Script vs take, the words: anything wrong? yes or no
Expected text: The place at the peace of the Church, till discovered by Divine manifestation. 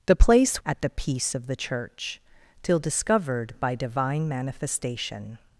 no